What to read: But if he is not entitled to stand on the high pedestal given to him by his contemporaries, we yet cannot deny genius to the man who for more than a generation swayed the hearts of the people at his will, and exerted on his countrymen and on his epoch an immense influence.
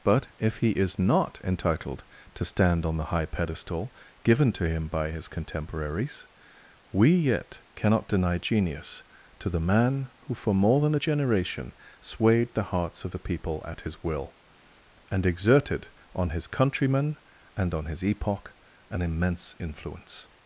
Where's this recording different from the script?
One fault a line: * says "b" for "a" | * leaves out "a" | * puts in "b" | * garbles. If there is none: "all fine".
all fine